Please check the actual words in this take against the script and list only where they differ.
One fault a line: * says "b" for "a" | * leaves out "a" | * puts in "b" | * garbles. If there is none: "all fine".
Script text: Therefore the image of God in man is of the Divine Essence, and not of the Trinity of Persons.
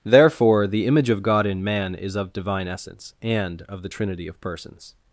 * leaves out "the"
* leaves out "not"